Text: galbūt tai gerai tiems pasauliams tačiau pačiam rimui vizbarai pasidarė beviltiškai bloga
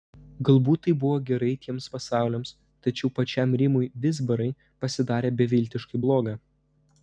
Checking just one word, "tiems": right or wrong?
right